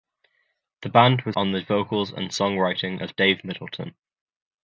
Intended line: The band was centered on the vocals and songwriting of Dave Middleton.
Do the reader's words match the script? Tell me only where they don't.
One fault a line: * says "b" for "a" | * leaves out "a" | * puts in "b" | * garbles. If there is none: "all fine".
* leaves out "centered"